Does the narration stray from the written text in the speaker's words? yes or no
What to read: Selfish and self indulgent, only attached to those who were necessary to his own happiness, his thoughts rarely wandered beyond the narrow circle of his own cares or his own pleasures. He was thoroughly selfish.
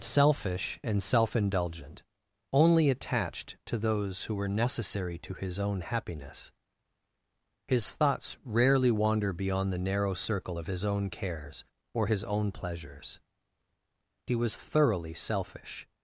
yes